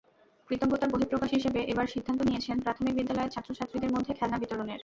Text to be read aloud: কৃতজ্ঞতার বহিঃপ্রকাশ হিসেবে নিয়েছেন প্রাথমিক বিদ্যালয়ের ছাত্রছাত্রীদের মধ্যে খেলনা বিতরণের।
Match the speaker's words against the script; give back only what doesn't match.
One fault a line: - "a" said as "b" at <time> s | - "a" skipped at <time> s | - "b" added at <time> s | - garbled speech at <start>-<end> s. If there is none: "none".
- "এবার সিদ্ধান্ত" added at 1.7 s